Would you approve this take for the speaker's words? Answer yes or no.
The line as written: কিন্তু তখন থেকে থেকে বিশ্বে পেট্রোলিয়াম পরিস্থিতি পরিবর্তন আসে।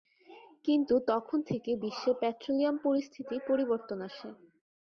no